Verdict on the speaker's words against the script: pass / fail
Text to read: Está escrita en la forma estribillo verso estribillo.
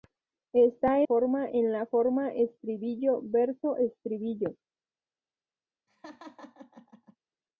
fail